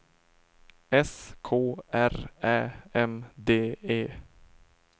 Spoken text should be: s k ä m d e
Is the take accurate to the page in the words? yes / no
no